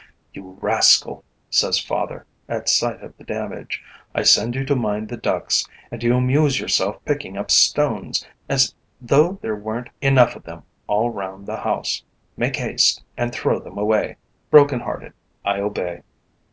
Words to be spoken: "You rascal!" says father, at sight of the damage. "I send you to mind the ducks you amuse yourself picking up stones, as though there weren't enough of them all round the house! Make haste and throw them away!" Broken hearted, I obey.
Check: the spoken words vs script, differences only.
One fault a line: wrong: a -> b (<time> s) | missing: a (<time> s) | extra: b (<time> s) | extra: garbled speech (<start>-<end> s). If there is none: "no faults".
extra: and (5.9 s)